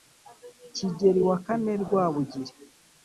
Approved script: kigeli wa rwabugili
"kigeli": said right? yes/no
yes